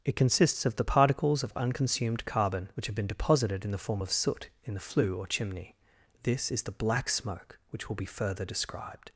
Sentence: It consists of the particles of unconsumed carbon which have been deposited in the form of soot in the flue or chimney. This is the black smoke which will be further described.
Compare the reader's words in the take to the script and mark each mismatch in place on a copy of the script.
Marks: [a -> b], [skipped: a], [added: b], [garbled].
It consists of the particles of unconsumed carbon which have been deposited in the form of soot in the flue or chimney. This is the black smoke which will be further described.